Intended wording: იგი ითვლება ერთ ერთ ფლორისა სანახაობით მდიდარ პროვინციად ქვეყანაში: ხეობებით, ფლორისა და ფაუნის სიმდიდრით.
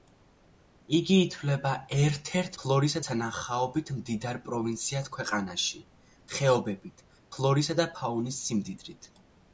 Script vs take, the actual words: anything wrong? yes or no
no